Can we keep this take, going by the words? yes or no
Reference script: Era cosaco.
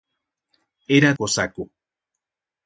yes